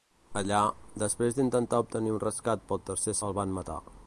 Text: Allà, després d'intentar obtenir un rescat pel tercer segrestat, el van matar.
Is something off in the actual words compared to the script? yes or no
yes